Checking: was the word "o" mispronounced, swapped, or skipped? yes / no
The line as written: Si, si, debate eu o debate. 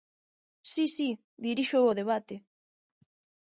no